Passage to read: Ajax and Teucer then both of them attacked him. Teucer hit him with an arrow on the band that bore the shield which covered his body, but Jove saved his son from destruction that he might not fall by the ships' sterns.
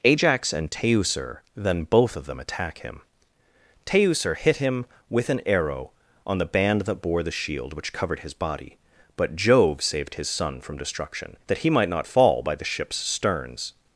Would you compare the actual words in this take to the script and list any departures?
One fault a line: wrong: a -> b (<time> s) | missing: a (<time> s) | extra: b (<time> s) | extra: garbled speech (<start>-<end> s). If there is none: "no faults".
wrong: attacked -> attack (2.4 s)